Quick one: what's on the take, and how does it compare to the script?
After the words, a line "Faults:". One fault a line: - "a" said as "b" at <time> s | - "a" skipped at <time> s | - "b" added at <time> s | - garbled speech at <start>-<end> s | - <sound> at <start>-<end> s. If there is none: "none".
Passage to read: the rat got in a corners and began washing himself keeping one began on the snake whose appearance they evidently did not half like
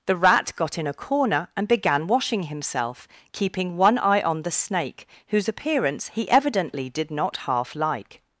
the rat got in a corner and began washing himself keeping one eye on the snake whose appearance he evidently did not half like
Faults:
- "corners" said as "corner" at 0.9 s
- "began" said as "eye" at 4.0 s
- "they" said as "he" at 6.2 s